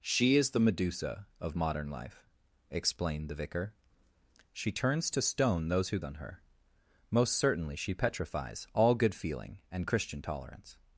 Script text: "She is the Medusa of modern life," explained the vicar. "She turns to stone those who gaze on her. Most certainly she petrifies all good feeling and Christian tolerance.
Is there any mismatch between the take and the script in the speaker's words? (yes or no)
yes